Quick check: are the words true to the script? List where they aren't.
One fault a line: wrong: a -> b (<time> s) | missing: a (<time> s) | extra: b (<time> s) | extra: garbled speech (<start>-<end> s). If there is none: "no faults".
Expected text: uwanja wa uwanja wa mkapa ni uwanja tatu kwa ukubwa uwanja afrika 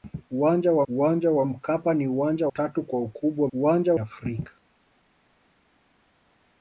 no faults